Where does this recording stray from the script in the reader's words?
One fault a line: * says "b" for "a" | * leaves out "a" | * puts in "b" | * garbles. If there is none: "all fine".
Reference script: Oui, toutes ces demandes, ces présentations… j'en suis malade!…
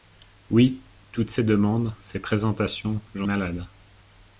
* leaves out "suis"